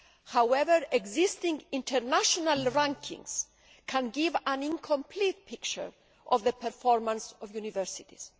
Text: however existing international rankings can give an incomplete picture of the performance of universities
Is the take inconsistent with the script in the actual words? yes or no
no